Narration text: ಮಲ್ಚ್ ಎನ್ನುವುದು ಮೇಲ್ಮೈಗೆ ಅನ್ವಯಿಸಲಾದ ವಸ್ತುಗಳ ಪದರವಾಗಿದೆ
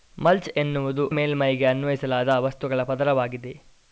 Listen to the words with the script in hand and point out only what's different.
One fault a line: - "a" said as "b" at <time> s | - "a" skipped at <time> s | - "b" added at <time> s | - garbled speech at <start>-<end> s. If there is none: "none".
none